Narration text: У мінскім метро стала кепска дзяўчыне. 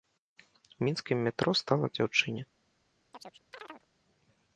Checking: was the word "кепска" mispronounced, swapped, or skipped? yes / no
yes